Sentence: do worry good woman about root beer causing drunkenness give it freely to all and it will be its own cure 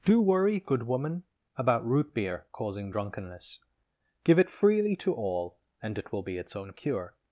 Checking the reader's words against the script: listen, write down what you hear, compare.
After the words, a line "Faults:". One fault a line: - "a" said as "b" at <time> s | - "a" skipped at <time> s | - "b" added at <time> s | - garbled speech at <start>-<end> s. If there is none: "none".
do worry good woman about root beer causing drunkenness give it freely to all and it will be its own cure
Faults:
none